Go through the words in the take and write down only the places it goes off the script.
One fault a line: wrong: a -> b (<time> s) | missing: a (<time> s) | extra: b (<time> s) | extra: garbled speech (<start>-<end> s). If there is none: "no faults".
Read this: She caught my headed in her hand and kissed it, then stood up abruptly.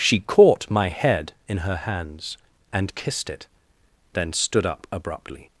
wrong: headed -> head (0.9 s)
wrong: hand -> hands (1.8 s)